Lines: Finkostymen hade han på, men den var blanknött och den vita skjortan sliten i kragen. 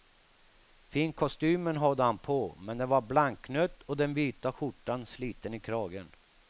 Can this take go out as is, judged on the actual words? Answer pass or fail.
pass